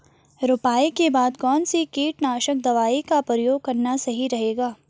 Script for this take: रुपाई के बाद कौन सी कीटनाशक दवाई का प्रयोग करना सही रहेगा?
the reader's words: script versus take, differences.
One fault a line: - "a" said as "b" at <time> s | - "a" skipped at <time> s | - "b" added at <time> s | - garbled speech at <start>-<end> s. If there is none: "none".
none